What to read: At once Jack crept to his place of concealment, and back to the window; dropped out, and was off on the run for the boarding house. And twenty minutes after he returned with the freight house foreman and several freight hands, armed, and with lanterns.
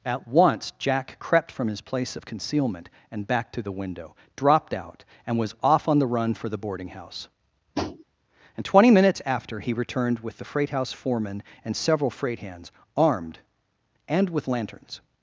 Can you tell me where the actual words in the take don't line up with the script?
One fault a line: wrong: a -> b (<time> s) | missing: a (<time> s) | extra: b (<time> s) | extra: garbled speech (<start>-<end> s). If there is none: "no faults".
wrong: to -> from (1.5 s)